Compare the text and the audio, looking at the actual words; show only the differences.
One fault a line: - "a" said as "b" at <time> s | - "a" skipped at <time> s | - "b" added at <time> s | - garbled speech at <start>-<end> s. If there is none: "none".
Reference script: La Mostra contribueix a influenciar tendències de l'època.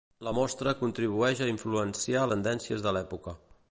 none